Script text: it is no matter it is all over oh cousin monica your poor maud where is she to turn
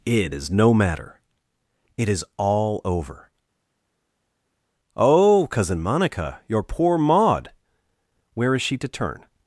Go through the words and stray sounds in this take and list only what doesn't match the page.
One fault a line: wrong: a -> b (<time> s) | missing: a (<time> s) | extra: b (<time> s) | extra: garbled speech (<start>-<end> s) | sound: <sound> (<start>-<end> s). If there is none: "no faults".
no faults